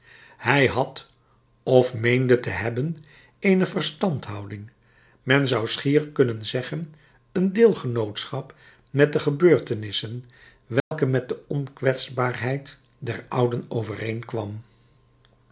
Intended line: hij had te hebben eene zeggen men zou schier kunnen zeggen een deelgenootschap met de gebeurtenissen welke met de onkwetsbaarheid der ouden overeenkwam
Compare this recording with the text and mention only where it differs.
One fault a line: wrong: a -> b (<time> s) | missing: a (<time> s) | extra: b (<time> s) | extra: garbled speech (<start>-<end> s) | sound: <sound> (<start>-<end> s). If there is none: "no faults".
extra: of meende (1.6 s)
wrong: zeggen -> verstandhouding (3.7 s)
sound: dropout (10.8-10.9 s)